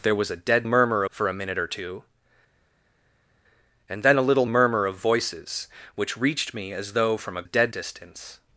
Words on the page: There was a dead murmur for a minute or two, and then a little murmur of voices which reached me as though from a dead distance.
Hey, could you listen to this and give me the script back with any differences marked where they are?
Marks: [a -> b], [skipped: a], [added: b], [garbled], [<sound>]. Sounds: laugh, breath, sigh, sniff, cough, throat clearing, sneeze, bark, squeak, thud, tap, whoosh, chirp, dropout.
There was a dead murmur for a minute or two, and then a little murmur of voices which reached me as though from a dead distance.